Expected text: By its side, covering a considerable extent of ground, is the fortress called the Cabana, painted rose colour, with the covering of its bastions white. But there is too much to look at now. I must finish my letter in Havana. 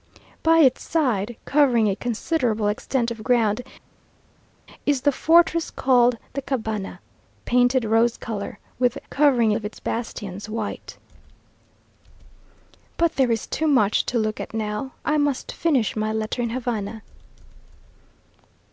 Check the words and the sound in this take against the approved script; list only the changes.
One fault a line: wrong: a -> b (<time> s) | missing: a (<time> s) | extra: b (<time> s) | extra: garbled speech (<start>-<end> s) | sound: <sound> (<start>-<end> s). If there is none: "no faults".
no faults